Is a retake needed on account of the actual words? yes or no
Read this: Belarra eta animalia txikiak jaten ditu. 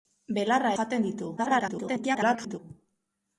yes